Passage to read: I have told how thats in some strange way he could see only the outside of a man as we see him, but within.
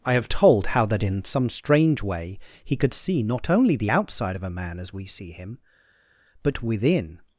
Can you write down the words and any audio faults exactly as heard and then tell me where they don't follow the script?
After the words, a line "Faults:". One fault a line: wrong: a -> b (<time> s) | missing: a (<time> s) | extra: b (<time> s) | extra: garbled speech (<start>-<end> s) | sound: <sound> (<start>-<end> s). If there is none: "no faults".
I have told how that in some strange way he could see not only the outside of a man as we see him, but within.
Faults:
wrong: thats -> that (0.9 s)
extra: not (3.2 s)